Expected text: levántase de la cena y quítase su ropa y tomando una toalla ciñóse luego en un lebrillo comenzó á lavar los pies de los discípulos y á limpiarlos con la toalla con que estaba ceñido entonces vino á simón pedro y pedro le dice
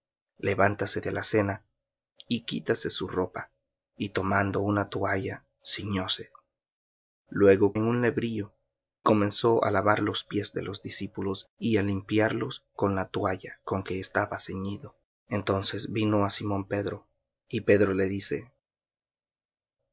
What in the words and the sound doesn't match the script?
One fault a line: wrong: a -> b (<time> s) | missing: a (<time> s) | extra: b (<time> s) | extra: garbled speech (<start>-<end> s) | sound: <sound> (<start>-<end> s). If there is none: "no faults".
no faults